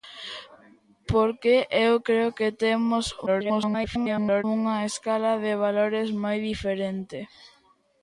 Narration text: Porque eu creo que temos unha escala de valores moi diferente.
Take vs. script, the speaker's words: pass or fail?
fail